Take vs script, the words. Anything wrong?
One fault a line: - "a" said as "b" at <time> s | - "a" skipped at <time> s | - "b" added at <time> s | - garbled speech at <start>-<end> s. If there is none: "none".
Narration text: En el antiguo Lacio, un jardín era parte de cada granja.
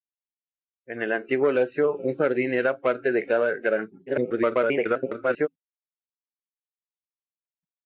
- garbled speech at 4.1-5.5 s